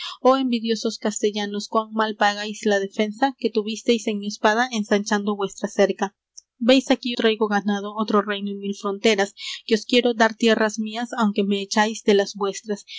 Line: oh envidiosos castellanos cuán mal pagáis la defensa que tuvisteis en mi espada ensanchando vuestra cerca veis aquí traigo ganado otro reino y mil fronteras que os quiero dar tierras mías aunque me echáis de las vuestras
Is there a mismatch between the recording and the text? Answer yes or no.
no